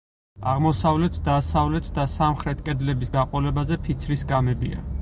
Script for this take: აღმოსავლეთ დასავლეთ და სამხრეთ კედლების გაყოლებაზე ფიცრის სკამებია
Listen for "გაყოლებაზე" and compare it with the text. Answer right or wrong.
right